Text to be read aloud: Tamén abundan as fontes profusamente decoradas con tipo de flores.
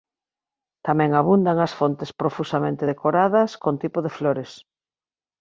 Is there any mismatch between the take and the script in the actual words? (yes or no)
no